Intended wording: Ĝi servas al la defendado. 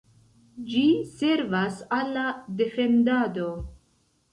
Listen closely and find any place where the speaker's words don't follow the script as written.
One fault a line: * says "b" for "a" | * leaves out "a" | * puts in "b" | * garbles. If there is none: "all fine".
all fine